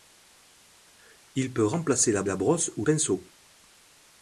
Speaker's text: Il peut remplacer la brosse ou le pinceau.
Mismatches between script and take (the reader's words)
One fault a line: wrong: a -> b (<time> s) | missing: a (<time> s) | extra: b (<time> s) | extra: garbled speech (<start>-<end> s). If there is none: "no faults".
extra: la (2.2 s)
missing: le (2.8 s)